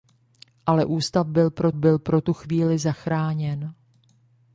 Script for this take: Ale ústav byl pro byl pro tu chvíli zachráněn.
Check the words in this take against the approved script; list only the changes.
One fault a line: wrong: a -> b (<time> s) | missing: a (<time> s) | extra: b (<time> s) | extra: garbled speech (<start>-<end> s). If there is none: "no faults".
no faults